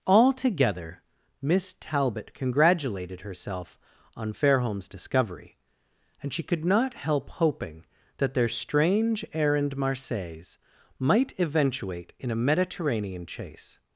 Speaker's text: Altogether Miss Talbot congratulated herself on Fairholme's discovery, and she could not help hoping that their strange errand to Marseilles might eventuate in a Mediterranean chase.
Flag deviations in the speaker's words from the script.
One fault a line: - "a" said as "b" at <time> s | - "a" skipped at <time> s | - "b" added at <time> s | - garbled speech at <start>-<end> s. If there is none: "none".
- "to" skipped at 9.7 s